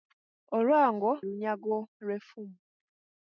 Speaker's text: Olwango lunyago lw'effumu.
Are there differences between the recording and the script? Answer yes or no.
no